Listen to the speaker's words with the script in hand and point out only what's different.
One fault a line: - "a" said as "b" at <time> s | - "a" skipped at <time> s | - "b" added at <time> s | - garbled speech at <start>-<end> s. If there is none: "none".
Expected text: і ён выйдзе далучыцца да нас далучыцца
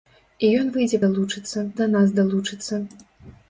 none